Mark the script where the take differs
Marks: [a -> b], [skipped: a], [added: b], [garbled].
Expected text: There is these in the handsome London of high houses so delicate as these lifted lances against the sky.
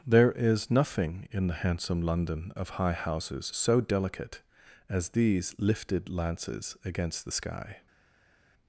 There is [these -> nothing] in the handsome London of high houses so delicate as these lifted lances against the sky.